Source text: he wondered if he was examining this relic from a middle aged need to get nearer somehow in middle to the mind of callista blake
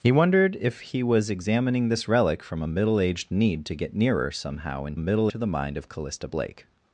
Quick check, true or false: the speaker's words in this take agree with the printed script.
true